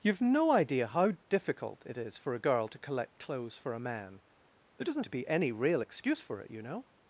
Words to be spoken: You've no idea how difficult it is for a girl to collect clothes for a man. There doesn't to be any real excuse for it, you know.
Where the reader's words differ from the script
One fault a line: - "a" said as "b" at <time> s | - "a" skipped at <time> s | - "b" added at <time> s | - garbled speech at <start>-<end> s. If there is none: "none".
none